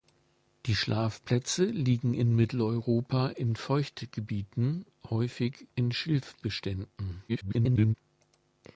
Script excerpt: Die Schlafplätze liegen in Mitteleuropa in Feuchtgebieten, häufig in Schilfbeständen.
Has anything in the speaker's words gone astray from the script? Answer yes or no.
yes